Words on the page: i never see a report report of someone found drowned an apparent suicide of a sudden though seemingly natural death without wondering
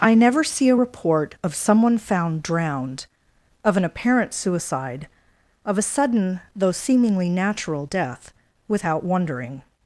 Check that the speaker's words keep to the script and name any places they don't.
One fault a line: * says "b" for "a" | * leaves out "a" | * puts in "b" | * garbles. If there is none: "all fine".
* leaves out "report"
* puts in "of"